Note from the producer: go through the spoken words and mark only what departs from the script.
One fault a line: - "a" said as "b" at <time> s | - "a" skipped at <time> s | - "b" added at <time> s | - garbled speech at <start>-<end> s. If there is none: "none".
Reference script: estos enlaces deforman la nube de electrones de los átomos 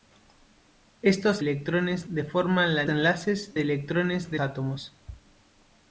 - "enlaces" said as "electrones" at 1.4 s
- "nube" said as "enlaces" at 2.9 s
- "los" skipped at 4.4 s